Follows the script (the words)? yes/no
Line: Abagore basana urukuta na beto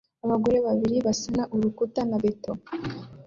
no